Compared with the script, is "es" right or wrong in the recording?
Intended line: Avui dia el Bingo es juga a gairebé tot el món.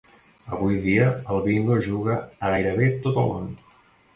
right